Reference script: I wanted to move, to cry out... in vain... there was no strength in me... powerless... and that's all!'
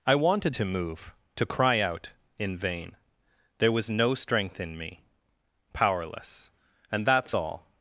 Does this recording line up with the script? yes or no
yes